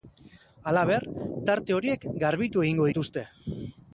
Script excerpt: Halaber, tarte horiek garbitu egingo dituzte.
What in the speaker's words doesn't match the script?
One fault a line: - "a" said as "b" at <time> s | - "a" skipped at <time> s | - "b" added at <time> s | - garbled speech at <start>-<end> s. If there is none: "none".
none